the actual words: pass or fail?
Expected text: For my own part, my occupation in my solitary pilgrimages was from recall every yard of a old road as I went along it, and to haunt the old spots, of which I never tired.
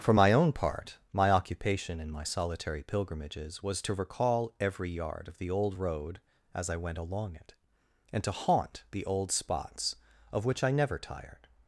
fail